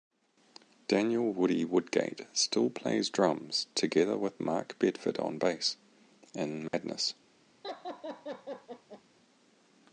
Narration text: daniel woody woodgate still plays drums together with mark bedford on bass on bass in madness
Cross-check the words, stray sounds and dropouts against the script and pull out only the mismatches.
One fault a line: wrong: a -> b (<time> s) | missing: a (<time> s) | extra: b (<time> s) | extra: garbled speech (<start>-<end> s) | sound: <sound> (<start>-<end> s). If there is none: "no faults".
missing: on bass (5.8 s)
sound: dropout (6.7-6.7 s)
sound: laugh (7.6-9.0 s)